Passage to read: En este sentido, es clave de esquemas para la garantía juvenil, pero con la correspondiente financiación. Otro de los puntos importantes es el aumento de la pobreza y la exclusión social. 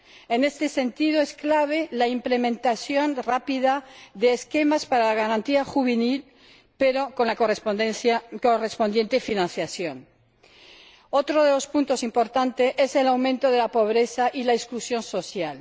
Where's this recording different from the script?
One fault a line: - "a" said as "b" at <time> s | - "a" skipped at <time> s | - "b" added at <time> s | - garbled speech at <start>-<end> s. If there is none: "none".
- "la implementación rápida" added at 1.9 s